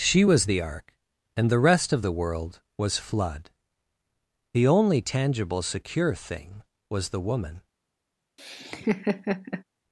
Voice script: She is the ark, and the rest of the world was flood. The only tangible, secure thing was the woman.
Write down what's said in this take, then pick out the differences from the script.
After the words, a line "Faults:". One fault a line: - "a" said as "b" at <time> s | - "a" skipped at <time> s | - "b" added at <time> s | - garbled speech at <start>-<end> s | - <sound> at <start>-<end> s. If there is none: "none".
She was the ark, and the rest of the world was flood. The only tangible, secure thing was the woman.
Faults:
- "is" said as "was" at 0.2 s
- laugh at 8.4-9.6 s